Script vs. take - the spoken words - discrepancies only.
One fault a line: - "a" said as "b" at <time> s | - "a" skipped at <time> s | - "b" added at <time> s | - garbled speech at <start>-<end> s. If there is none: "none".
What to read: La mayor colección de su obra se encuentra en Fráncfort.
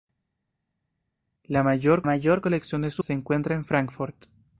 - "mayor" added at 2.0 s
- "obra" skipped at 3.0 s